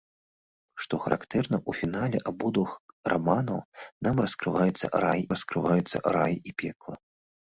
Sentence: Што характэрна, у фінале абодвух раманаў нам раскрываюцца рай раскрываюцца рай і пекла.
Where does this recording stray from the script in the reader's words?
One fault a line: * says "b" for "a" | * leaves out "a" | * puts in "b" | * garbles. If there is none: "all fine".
all fine